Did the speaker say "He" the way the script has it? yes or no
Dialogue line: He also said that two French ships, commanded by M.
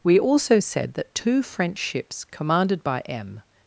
no